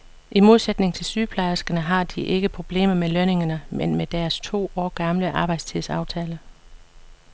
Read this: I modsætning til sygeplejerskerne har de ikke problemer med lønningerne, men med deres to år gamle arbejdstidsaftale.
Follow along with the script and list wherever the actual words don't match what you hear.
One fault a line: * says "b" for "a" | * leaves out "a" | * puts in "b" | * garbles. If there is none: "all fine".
all fine